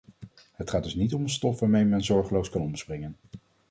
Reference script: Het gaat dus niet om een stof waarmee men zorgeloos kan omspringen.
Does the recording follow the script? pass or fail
pass